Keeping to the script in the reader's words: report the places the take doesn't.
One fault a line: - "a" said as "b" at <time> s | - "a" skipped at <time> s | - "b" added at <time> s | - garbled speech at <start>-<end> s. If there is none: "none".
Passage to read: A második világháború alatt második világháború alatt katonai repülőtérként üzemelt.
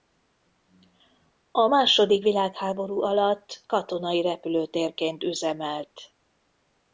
- "második világháború alatt" skipped at 3.7 s